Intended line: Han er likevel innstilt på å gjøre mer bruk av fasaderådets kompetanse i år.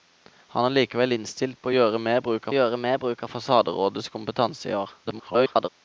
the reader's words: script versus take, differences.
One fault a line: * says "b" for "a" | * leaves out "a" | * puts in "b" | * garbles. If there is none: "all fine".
* puts in "gjøre mer bruk"
* garbles